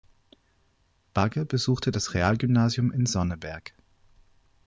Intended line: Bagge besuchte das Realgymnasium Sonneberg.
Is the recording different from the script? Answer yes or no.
yes